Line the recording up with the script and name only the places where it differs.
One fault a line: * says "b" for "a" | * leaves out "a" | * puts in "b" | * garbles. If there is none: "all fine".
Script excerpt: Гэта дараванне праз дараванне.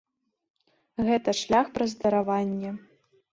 * says "шлях" for "дараванне"